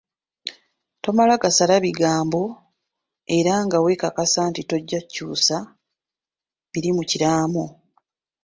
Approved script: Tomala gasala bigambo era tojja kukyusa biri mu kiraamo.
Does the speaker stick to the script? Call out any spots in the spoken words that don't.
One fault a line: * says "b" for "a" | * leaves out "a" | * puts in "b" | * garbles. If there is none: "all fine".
* puts in "nga weekakasa nti"